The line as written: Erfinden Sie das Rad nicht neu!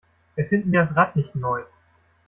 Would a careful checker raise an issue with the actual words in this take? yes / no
no